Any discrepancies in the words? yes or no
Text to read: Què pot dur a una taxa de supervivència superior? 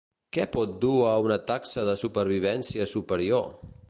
no